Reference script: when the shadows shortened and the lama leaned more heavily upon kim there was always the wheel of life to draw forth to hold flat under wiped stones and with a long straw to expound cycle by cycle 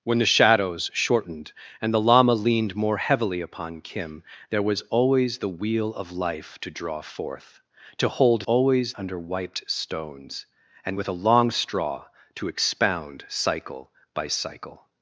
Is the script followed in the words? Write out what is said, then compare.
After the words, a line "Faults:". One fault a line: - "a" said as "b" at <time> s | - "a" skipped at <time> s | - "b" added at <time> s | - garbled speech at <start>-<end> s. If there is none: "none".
when the shadows shortened and the lama leaned more heavily upon kim there was always the wheel of life to draw forth to hold always under wiped stones and with a long straw to expound cycle by cycle
Faults:
- "flat" said as "always" at 8.4 s